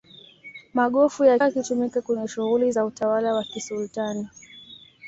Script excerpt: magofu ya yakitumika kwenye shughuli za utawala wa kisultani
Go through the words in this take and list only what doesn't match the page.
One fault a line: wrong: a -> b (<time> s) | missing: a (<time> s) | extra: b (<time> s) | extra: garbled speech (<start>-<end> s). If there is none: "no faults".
no faults